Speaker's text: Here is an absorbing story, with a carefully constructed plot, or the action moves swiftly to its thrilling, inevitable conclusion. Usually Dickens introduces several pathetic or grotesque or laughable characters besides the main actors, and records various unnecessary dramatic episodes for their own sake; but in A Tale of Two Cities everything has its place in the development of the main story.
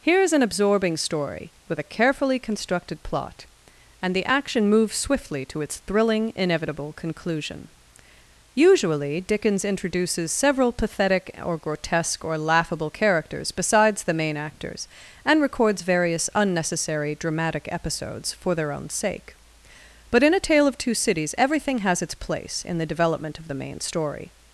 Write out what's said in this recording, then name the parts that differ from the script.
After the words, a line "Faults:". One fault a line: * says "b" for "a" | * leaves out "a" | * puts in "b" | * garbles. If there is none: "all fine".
Here is an absorbing story, with a carefully constructed plot, and the action moves swiftly to its thrilling, inevitable conclusion. Usually Dickens introduces several pathetic or grotesque or laughable characters besides the main actors, and records various unnecessary dramatic episodes for their own sake; but in A Tale of Two Cities everything has its place in the development of the main story.
Faults:
* says "and" for "or"